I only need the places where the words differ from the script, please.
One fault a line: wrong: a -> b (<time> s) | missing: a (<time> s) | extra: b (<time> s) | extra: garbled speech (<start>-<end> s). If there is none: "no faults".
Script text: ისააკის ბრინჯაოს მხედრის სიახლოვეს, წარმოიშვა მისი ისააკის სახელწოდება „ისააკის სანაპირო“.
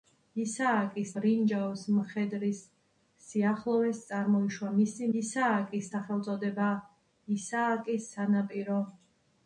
no faults